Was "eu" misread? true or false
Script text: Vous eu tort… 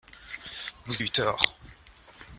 false